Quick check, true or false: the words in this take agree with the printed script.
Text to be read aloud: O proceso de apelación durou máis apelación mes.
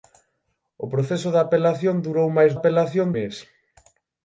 true